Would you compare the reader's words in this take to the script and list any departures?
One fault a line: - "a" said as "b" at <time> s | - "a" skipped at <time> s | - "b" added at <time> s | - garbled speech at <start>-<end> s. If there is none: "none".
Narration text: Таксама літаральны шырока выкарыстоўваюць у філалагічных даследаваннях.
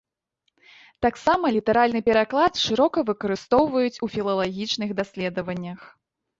- "пераклад" added at 2.1 s